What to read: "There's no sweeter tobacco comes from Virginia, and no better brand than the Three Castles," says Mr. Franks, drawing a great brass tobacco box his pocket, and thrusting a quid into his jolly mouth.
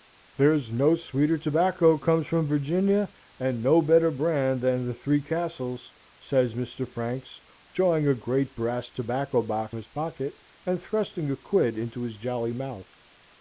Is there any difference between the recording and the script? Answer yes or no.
no